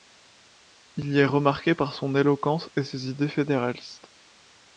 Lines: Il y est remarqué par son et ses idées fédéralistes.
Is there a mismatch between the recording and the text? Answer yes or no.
yes